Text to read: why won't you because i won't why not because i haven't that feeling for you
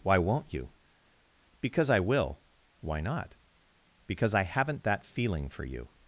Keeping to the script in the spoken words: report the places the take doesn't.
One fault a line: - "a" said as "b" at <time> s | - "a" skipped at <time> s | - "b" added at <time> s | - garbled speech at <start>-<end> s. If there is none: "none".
- "won't" said as "will" at 2.0 s